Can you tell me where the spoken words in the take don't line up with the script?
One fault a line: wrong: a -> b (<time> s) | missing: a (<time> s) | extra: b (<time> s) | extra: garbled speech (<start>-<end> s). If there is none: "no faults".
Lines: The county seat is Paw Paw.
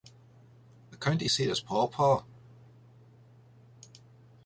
no faults